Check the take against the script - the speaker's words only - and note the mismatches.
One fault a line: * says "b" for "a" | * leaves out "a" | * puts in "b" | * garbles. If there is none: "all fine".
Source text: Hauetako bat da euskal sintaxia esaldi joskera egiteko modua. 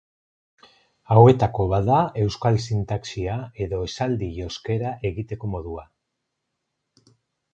* puts in "edo"